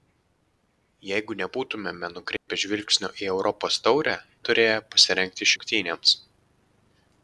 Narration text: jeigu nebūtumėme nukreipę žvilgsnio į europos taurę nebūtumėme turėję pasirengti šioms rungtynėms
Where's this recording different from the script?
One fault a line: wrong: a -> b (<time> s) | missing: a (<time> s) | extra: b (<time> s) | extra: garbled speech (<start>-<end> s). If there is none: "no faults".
missing: nebūtumėme (4.2 s)
missing: šioms (5.5 s)